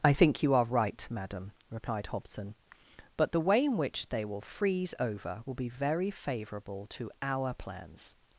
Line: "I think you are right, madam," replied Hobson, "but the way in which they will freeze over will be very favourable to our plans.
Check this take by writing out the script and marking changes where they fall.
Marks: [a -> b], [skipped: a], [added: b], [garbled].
"I think you are right, madam," replied Hobson, "but the way in which they will freeze over will be very favourable to our plans.